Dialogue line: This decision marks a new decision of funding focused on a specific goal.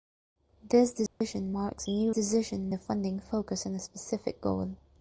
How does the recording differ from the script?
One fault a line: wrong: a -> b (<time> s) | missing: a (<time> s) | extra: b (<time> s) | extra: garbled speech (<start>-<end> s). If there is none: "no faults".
no faults